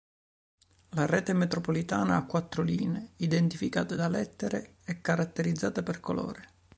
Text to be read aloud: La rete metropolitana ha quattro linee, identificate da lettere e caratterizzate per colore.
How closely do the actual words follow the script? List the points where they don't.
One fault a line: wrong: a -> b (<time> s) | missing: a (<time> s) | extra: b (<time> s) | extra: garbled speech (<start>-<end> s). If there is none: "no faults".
no faults